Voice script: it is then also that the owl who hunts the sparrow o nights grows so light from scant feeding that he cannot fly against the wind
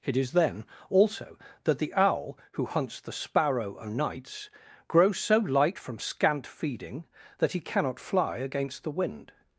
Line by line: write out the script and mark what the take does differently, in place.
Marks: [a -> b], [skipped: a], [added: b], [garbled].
it is then also that the owl who hunts the sparrow o nights grows so light from scant feeding that he cannot fly against the wind